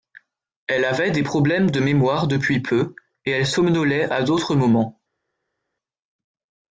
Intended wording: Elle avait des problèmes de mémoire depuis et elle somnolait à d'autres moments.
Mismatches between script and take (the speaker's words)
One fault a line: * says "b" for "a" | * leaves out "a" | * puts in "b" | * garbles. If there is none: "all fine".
* puts in "peu"